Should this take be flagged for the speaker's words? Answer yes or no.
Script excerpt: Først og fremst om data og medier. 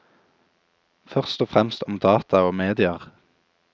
no